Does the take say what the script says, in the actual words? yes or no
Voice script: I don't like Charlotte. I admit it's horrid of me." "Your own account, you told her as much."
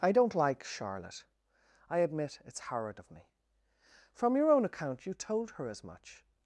no